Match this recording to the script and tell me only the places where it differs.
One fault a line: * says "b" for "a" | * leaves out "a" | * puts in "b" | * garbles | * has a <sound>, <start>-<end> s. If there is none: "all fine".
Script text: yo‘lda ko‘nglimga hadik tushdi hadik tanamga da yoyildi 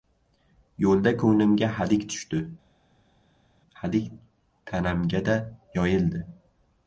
all fine